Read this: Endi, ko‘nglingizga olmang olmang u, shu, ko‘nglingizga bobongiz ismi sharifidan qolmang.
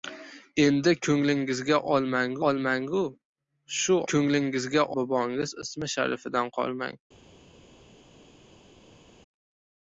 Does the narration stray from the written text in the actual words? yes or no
no